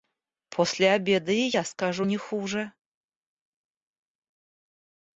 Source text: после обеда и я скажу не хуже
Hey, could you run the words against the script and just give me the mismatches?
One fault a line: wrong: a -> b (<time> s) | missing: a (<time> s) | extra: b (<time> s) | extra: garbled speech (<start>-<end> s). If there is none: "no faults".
no faults